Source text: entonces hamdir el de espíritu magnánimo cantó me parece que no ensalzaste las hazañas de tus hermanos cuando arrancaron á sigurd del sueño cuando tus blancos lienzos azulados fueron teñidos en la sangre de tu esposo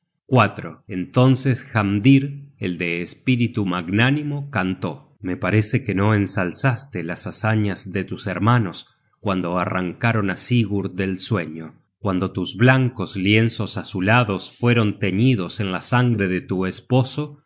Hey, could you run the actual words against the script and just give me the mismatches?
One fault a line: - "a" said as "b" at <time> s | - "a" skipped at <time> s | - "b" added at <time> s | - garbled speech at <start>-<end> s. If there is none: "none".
none